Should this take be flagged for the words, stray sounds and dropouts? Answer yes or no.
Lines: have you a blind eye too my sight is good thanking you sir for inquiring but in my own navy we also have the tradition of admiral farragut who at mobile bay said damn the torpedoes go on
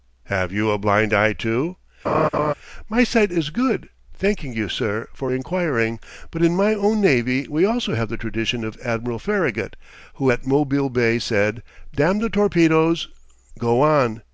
yes